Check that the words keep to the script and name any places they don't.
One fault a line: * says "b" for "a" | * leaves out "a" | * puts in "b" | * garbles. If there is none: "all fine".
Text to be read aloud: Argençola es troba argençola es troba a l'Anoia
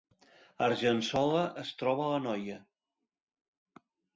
* leaves out "argençola es troba"